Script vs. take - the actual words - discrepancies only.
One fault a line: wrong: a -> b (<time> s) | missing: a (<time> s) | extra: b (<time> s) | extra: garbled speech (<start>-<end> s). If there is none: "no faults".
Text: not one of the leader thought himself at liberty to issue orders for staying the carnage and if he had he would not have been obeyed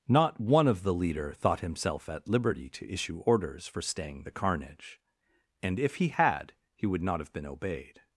no faults